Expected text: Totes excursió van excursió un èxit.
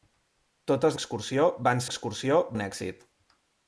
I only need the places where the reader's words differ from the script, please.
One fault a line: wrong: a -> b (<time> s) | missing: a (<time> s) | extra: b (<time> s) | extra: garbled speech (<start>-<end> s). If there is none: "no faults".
no faults